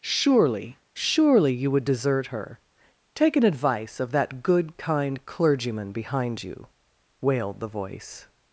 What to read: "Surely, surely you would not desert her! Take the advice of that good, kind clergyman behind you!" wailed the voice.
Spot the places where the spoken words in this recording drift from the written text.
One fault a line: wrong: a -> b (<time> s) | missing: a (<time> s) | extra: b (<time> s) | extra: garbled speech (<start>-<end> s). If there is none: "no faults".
missing: not (1.9 s)
wrong: the -> an (3.4 s)